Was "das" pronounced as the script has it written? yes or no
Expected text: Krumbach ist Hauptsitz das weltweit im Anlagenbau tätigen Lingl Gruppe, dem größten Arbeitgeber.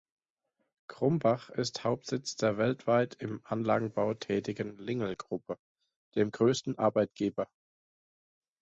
no